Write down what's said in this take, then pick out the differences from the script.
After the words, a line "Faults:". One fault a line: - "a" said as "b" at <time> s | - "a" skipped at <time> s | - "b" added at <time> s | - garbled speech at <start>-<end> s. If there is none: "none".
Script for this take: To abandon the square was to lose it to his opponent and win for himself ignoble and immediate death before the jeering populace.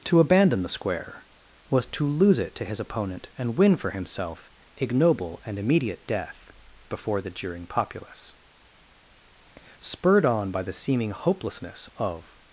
To abandon the square was to lose it to his opponent and win for himself ignoble and immediate death before the jeering populace. Spurred on by the seeming hopelessness of
Faults:
- "Spurred on by the seeming hopelessness of" added at 9.8 s